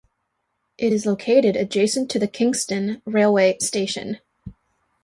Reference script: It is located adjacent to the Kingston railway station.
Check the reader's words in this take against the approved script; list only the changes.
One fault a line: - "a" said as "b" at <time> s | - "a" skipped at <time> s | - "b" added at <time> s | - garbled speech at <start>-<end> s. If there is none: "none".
none